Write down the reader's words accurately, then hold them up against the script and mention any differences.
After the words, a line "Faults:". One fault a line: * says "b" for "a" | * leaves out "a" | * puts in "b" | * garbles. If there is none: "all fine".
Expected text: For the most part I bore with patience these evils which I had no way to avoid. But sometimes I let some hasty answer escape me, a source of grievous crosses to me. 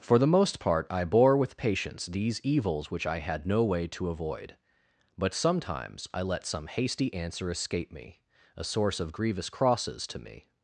For the most part I bore with patience these evils which I had no way to avoid. But sometimes I let some hasty answer escape me, a source of grievous crosses to me.
Faults:
all fine